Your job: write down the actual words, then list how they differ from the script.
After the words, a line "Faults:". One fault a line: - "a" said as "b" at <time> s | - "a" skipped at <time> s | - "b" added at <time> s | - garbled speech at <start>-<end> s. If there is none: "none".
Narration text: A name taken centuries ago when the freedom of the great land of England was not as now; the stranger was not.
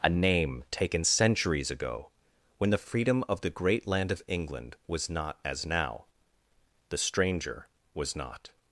A name taken centuries ago when the freedom of the great land of England was not as now; the stranger was not.
Faults:
none